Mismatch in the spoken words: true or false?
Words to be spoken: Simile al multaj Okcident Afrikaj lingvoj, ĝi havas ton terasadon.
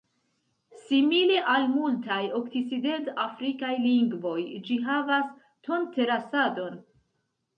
false